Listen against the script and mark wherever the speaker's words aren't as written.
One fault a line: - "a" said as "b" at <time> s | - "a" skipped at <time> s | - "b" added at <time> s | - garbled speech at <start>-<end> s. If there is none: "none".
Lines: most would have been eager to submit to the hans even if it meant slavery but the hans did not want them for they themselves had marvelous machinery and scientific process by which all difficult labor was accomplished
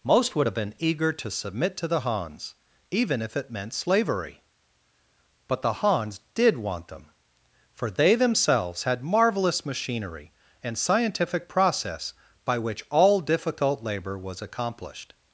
- "not" skipped at 6.6 s